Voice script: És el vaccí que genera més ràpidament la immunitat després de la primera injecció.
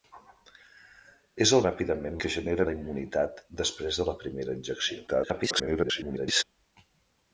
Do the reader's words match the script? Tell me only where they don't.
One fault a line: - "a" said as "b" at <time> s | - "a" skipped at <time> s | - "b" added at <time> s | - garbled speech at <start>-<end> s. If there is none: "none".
- "vaccí" said as "ràpidament" at 1.7 s
- "més ràpidament" skipped at 2.7 s
- garbled speech at 5.1-6.4 s